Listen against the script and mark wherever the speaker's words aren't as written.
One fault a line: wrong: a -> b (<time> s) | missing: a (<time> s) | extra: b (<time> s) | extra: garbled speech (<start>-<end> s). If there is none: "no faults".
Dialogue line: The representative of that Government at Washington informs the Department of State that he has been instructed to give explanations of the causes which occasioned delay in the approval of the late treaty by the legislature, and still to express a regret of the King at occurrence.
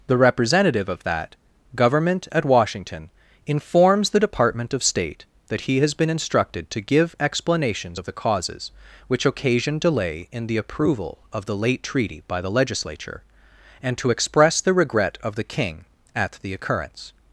missing: still (14.0 s)
wrong: a -> the (14.6 s)
extra: the (16.4 s)